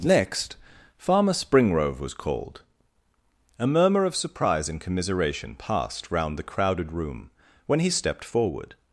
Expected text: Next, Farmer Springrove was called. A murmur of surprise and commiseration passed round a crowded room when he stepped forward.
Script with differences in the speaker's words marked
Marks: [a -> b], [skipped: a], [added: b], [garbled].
Next, Farmer Springrove was called. A murmur of surprise and commiseration passed round [a -> the] crowded room when he stepped forward.